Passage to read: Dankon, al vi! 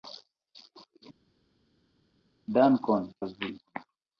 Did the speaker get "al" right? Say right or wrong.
right